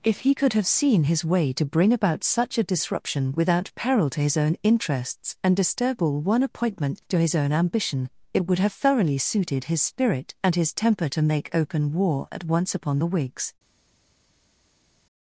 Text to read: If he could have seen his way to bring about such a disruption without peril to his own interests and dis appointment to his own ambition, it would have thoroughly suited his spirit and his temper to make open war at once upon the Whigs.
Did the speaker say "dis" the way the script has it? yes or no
no